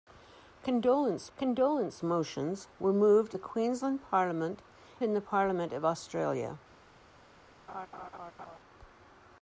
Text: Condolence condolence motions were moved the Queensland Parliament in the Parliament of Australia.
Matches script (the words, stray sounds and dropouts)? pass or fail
fail